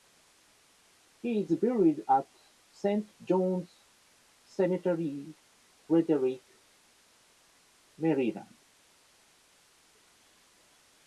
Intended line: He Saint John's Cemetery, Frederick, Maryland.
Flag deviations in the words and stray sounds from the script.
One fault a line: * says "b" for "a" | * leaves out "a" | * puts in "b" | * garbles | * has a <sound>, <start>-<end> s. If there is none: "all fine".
* puts in "is buried at"